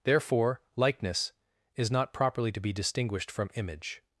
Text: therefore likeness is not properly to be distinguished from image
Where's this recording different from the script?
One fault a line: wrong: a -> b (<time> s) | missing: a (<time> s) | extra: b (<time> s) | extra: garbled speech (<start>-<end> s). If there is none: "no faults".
no faults